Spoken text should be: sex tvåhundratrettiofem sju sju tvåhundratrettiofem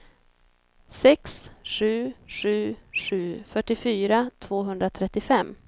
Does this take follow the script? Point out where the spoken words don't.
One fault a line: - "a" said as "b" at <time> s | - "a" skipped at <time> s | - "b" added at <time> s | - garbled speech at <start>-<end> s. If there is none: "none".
- "tvåhundratrettiofem" said as "sju" at 1.6 s
- "fyrtiofyra" added at 3.5 s